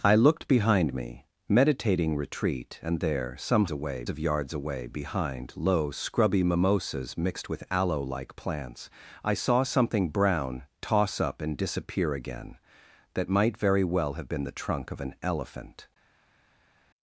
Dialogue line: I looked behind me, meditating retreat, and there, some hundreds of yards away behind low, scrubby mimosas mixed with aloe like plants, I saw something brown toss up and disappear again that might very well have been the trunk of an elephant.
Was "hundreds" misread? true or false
true